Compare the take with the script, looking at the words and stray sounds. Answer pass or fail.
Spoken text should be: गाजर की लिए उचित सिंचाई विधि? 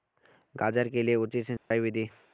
fail